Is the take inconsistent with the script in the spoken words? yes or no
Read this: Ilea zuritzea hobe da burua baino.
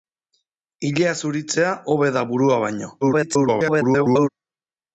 yes